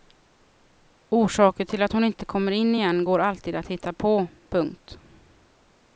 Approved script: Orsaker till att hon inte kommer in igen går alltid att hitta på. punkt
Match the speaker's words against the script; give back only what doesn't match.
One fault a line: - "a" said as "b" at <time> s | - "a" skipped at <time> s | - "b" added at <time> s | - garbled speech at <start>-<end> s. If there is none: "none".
none